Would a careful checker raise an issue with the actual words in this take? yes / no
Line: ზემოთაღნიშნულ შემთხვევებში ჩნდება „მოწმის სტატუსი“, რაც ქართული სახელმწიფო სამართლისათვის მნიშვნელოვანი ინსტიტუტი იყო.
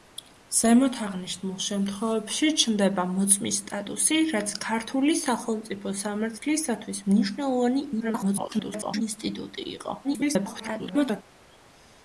yes